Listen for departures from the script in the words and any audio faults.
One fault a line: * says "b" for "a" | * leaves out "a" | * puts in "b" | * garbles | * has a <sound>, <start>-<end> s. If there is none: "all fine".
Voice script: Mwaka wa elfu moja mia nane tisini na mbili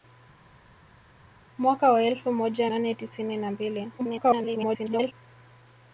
* leaves out "mia"
* garbles